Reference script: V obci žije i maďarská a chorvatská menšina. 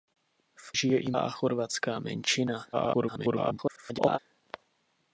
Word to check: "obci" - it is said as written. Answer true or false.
false